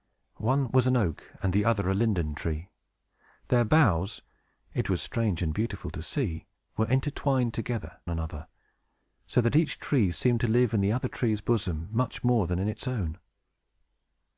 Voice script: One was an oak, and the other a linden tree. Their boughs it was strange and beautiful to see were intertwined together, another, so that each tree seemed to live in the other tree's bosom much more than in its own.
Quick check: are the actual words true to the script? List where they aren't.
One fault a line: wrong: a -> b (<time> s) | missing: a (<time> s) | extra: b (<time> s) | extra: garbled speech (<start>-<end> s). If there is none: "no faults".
no faults